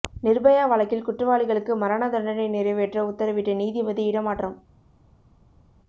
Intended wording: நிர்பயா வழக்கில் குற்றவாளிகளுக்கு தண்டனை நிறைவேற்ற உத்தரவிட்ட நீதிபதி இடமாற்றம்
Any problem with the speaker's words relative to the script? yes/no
yes